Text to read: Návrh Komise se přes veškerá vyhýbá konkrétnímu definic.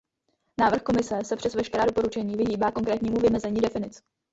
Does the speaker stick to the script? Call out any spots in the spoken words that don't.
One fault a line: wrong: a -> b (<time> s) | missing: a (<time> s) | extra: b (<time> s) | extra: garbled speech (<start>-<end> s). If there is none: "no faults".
extra: doporučení (1.8 s)
extra: vymezení (3.2 s)